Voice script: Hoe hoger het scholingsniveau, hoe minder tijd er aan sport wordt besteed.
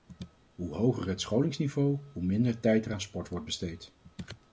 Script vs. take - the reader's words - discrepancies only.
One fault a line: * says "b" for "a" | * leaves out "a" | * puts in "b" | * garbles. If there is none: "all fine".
all fine